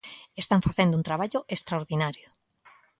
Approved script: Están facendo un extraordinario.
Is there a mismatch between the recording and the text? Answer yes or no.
yes